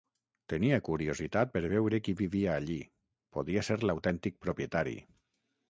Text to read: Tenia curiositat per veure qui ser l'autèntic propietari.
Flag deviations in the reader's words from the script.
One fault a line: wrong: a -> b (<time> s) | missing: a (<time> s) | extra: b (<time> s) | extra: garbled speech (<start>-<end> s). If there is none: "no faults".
extra: vivia allí podia (2.2 s)